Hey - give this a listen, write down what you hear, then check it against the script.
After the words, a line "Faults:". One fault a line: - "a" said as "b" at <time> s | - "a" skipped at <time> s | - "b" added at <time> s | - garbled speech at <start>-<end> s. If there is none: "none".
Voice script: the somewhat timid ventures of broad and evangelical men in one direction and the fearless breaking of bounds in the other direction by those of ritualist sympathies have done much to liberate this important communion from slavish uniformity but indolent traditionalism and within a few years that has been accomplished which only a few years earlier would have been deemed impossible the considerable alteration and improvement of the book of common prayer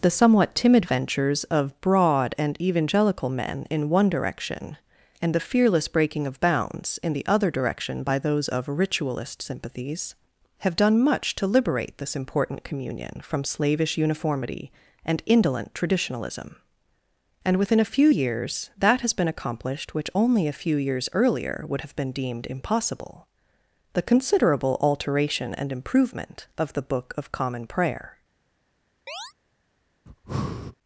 the somewhat timid ventures of broad and evangelical men in one direction and the fearless breaking of bounds in the other direction by those of ritualist sympathies have done much to liberate this important communion from slavish uniformity and indolent traditionalism and within a few years that has been accomplished which only a few years earlier would have been deemed impossible the considerable alteration and improvement of the book of common prayer
Faults:
- "but" said as "and" at 15.1 s